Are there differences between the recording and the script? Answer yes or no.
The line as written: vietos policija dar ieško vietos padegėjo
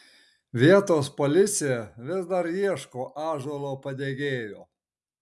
yes